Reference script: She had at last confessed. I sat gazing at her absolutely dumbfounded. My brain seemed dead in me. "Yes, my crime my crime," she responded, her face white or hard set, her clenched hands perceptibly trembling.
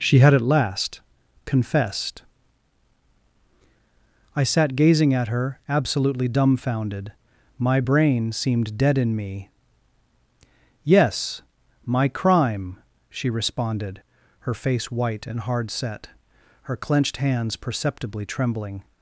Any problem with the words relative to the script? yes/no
yes